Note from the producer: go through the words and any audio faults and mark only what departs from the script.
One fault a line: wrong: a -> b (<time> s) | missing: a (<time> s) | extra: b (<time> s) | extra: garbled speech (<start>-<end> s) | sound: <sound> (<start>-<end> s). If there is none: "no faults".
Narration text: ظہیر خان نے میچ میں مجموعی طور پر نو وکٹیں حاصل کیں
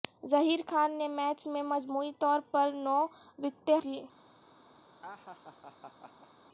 missing: حاصل (3.8 s)
sound: laugh (5.0-6.3 s)